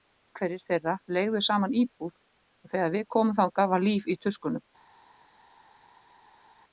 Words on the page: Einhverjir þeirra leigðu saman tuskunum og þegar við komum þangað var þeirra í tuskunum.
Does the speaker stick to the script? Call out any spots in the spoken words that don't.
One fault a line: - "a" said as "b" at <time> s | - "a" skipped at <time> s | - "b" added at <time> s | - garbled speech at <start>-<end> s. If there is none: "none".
- "tuskunum" said as "íbúð" at 1.8 s
- "þeirra" said as "líf" at 3.9 s